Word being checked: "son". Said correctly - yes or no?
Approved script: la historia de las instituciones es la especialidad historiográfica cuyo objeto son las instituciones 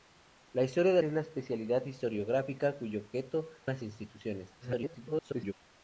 no